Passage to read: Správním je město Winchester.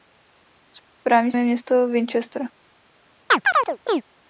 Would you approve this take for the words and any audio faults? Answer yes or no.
no